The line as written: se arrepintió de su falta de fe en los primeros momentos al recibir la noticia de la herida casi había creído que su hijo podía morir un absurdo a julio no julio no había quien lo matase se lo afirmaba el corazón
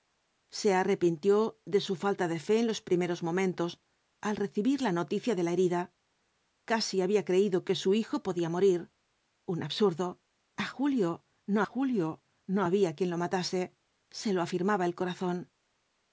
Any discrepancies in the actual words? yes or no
no